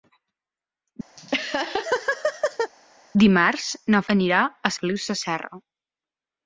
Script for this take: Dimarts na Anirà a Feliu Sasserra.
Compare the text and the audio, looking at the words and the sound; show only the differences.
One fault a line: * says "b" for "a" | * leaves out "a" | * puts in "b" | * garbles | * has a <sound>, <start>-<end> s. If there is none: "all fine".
* has a laugh, 1.2-2.7 s